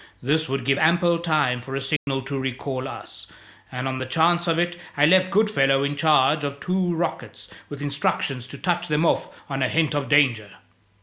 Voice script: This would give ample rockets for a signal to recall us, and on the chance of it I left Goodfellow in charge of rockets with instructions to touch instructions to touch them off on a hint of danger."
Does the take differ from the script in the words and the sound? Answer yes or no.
yes